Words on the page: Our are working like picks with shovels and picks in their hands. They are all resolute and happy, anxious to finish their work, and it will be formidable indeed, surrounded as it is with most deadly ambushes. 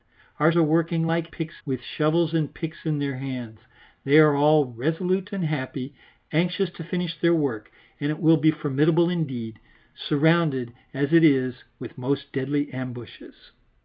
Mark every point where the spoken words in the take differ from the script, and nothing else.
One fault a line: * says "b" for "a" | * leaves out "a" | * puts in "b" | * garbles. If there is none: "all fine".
all fine